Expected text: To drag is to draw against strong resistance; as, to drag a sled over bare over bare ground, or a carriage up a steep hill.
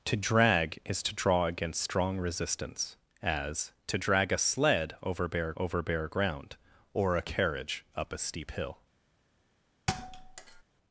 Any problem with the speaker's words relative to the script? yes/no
no